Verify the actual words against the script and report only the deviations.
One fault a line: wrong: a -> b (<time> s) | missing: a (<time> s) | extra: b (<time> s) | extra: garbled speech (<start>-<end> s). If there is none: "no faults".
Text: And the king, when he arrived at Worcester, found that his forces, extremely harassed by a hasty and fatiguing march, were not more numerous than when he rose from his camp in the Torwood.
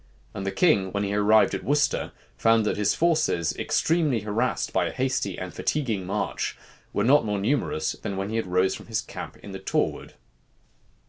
no faults